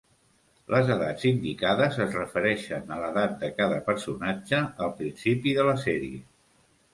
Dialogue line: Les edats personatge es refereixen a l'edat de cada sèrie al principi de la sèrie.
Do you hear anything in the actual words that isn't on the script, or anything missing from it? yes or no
yes